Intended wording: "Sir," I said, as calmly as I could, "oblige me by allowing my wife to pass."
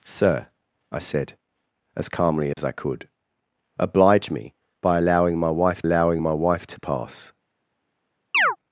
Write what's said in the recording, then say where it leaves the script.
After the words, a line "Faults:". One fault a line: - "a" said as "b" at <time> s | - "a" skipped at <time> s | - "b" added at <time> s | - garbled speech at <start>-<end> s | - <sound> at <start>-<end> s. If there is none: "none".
"Sir," I said, as calmly as I could, "oblige me by allowing my wife allowing my wife to pass."
Faults:
- dropout at 2.5-2.6 s
- "allowing my wife" added at 5.8 s
- chirp at 8.3-8.6 s